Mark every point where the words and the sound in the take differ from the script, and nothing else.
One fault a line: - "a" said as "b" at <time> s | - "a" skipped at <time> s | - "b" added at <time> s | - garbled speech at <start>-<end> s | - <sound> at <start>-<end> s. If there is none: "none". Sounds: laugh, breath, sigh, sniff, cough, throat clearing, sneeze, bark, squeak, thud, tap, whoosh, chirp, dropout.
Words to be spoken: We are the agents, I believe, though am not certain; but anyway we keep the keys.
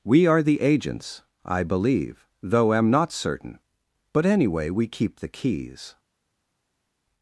none